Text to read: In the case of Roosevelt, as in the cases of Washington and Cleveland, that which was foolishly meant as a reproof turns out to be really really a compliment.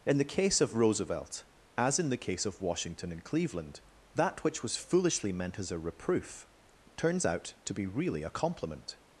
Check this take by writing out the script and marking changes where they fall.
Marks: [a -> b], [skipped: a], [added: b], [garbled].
In the case of Roosevelt, as in the [cases -> case] of Washington and Cleveland, that which was foolishly meant as a reproof turns out to be really [skipped: really] a compliment.